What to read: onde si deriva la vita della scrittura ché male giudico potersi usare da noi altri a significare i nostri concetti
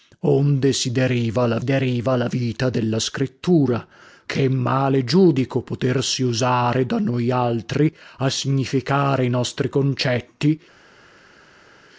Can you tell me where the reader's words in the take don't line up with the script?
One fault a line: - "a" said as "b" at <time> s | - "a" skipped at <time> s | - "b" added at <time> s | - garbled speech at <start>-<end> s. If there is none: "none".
- "deriva la" added at 1.6 s